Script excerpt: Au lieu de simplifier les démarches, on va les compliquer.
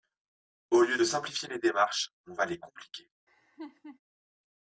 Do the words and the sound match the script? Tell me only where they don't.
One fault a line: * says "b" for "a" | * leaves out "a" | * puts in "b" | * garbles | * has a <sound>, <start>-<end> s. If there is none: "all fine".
* has a laugh, 3.3-4.0 s